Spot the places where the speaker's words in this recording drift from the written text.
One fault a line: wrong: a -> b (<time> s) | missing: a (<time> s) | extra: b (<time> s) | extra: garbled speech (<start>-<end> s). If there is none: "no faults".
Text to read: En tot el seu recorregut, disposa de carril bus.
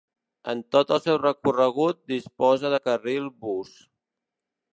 no faults